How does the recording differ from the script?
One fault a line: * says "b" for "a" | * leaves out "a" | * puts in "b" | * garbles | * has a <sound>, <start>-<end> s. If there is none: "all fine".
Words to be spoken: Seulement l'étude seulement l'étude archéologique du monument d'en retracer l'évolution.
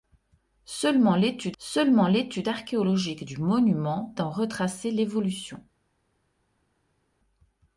all fine